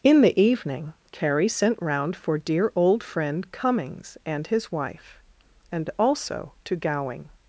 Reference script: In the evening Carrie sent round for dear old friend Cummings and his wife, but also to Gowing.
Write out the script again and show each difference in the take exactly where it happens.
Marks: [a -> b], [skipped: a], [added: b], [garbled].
In the evening Carrie sent round for dear old friend Cummings and his wife, [but -> and] also to Gowing.